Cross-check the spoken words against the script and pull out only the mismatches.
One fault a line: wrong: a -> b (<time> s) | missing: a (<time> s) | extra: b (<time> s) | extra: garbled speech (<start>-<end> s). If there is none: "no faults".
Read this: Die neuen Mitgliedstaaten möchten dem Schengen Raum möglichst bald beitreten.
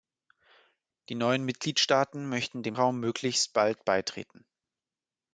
missing: Schengen (2.8 s)